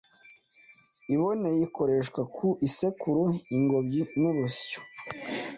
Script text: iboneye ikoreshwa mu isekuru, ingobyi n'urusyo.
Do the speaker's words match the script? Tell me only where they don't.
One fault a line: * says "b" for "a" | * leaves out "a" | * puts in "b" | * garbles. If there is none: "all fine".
* says "ku" for "mu"